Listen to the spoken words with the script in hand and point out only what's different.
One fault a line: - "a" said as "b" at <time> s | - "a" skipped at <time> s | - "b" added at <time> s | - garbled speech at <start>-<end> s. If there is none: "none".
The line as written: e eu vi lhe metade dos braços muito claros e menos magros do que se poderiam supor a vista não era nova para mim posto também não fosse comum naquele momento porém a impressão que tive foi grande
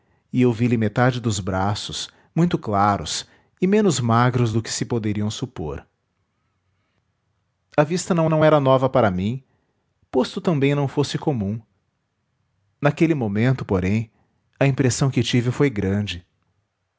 - "não" added at 8.3 s